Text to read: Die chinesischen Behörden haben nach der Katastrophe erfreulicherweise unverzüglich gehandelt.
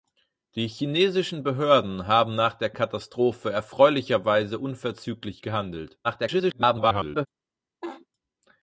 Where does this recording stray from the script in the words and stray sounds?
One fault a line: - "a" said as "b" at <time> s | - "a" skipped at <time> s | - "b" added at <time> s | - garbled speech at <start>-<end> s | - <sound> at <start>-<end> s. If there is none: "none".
- garbled speech at 6.0-7.3 s
- laugh at 7.8-8.1 s